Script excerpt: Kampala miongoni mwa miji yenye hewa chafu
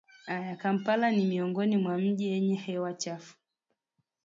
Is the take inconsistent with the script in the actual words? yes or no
yes